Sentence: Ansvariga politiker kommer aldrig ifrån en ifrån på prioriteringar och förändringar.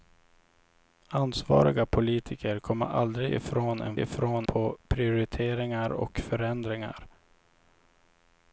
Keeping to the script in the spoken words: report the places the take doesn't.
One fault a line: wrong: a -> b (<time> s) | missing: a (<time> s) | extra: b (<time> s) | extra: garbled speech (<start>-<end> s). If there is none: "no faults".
no faults